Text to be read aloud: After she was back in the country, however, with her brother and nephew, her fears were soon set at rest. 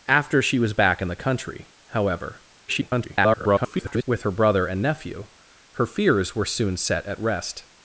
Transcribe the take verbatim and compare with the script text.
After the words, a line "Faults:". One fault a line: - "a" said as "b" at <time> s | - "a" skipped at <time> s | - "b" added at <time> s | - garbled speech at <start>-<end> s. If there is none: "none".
After she was back in the country, however, [garbled] with her brother and nephew, her fears were soon set at rest.
Faults:
- garbled speech at 2.7-4.0 s